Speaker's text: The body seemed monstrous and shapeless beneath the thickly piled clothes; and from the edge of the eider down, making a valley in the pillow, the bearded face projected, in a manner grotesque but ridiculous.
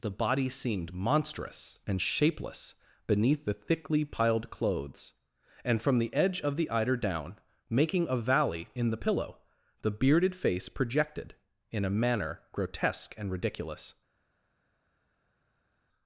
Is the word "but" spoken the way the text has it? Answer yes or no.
no